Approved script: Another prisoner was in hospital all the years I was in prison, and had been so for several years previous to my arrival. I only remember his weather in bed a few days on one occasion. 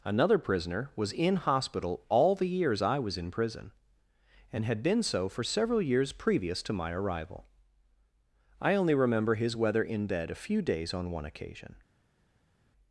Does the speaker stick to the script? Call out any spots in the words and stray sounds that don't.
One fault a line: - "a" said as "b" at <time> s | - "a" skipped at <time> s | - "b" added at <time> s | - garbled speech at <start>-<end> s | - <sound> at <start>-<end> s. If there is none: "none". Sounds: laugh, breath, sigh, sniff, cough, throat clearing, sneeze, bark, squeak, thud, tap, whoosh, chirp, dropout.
none